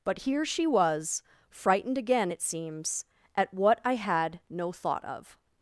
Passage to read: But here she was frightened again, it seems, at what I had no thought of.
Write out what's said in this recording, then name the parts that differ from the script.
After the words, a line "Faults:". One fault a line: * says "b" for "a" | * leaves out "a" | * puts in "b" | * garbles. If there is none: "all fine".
But here she was frightened again, it seems, at what I had no thought of.
Faults:
all fine